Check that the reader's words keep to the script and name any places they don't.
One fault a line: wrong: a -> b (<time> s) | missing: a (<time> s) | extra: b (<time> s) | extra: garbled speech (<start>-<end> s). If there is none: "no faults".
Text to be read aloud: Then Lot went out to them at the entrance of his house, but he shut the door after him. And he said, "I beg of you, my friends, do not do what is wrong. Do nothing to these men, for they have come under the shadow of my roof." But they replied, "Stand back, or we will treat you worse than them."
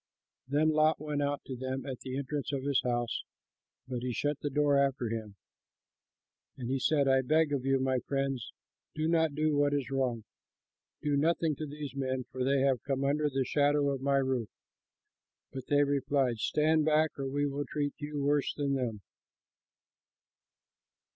no faults